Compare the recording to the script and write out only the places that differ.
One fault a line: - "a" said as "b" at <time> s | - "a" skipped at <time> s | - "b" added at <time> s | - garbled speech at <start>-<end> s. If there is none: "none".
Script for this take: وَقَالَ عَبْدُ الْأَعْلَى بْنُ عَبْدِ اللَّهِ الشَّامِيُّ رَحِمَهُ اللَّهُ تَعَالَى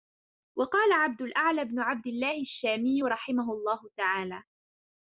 none